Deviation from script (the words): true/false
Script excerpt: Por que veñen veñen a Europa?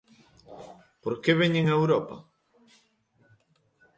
true